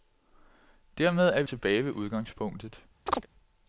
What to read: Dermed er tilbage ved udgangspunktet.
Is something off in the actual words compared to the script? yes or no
no